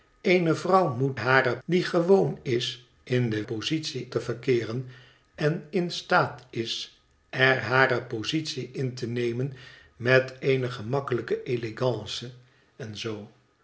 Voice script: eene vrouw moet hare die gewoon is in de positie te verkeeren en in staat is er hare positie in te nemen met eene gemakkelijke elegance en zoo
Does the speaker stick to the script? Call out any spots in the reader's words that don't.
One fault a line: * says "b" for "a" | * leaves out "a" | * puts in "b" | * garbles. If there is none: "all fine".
all fine